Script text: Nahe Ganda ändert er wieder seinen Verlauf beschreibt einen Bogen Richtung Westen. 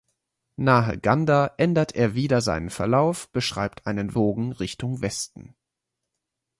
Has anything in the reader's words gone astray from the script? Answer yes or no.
no